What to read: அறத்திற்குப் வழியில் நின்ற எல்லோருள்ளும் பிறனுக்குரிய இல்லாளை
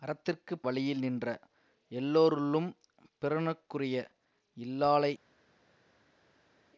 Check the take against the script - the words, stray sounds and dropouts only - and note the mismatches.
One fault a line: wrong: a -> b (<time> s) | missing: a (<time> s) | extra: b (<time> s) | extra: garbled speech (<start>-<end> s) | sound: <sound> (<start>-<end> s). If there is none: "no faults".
no faults